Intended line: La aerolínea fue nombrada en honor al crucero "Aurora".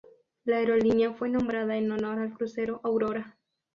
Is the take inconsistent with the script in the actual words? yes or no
no